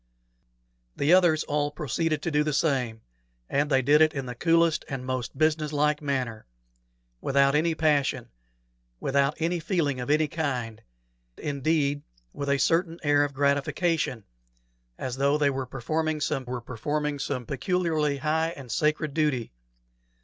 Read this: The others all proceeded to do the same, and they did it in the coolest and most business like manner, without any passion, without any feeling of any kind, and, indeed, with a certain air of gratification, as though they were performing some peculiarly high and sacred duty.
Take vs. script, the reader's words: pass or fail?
fail